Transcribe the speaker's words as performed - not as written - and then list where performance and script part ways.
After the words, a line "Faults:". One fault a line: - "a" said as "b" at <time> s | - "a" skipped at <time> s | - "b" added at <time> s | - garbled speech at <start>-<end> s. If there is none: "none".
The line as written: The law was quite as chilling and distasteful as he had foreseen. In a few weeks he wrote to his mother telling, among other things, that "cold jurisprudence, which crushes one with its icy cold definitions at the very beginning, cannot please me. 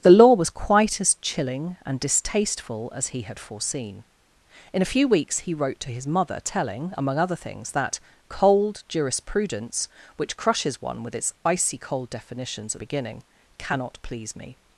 The law was quite as chilling and distasteful as he had foreseen. In a few weeks he wrote to his mother telling, among other things, that "cold jurisprudence, which crushes one with its icy cold definitions at beginning, cannot please me.
Faults:
- "the very" skipped at 12.8 s